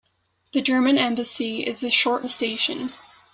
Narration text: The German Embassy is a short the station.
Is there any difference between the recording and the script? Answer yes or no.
no